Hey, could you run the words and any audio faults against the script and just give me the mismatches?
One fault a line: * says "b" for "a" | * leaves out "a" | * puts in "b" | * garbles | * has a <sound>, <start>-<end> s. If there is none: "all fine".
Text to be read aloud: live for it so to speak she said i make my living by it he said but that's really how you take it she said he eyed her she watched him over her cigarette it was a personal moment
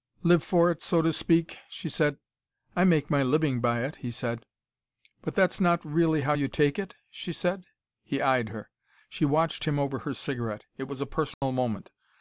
* puts in "not"
* has a dropout, 11.3-11.4 s